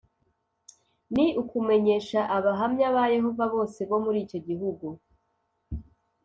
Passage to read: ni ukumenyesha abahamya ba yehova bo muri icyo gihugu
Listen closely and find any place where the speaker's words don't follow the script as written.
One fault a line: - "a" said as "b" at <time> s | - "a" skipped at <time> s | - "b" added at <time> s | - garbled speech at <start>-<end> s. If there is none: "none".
- "bose" added at 3.5 s